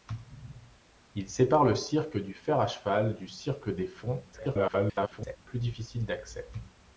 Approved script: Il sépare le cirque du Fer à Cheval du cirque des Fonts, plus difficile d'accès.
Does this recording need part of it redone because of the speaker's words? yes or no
yes